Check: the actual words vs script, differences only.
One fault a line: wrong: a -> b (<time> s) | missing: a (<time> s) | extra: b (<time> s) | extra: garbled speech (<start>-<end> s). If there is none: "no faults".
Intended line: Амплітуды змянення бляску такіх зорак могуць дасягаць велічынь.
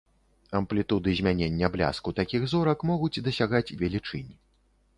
no faults